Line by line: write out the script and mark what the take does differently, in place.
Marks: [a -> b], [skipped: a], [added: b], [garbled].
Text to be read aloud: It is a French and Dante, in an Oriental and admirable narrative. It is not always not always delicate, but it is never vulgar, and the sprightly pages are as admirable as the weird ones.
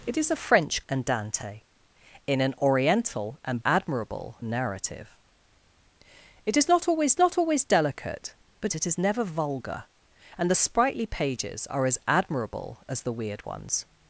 It is a French and Dante, in an Oriental and admirable narrative. It is not always not always delicate, but it is never vulgar, and the sprightly pages are as admirable as the weird ones.